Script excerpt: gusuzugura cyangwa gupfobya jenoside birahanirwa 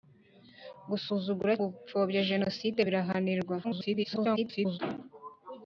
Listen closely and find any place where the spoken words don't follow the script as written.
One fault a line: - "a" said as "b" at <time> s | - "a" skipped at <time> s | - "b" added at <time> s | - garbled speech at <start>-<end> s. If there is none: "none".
- "cyangwa" skipped at 1.5 s
- garbled speech at 3.6-4.8 s